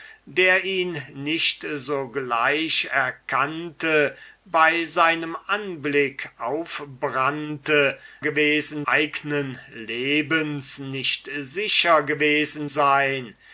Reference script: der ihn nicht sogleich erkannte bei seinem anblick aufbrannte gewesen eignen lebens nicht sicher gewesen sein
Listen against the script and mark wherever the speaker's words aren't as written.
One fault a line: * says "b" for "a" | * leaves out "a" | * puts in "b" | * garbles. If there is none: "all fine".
all fine